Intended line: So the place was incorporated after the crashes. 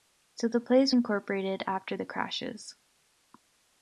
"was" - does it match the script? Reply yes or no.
no